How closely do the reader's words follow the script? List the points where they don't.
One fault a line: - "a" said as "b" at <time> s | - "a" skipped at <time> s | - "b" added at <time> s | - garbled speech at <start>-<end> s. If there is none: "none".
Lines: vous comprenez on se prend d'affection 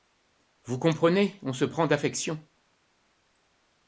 none